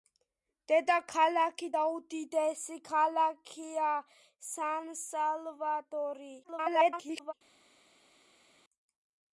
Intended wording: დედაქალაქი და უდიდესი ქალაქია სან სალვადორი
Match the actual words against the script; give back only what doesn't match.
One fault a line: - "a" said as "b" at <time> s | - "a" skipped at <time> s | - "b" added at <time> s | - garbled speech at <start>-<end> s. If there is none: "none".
- garbled speech at 6.4-7.3 s